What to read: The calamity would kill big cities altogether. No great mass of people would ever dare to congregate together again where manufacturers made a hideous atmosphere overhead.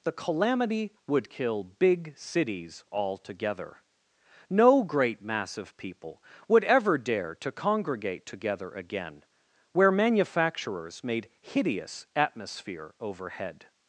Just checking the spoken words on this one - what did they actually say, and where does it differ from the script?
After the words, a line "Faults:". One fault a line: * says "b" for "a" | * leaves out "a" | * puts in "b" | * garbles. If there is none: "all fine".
The calamity would kill big cities altogether. No great mass of people would ever dare to congregate together again where manufacturers made hideous atmosphere overhead.
Faults:
* leaves out "a"